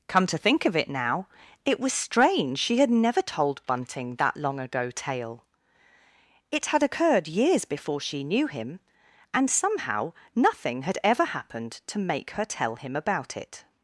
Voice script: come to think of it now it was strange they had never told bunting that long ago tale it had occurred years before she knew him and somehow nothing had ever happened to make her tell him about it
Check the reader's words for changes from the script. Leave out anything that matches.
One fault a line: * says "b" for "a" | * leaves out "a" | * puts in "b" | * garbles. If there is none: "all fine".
* says "she" for "they"